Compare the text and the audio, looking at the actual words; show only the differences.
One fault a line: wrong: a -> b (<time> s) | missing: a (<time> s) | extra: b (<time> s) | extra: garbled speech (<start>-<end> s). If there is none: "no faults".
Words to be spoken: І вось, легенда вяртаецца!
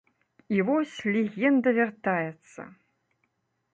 no faults